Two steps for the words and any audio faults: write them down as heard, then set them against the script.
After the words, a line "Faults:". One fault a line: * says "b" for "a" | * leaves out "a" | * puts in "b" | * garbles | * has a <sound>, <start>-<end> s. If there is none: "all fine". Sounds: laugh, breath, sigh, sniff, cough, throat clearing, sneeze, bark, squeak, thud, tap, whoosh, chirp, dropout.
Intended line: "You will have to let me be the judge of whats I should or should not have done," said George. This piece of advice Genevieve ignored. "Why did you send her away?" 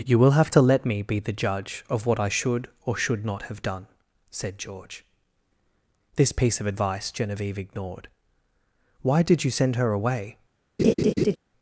"You will have to let me be the judge of what I should or should not have done," said George. This piece of advice Genevieve ignored. "Why did you send her away?"
Faults:
* says "what" for "whats"
* has a laugh, 10.8-11.4 s